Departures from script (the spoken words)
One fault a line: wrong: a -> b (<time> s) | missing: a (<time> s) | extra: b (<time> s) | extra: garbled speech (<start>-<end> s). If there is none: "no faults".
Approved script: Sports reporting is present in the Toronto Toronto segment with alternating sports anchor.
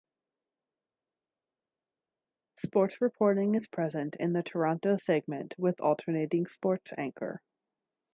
missing: Toronto (5.0 s)